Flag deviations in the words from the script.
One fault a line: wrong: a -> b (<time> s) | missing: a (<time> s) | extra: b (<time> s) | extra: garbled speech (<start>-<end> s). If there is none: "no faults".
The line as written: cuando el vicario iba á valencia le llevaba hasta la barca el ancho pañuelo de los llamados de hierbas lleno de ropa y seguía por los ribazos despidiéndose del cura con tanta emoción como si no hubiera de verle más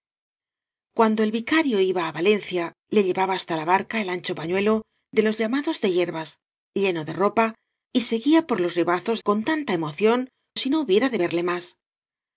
missing: despidiéndose del cura (9.2 s)
missing: como (10.2 s)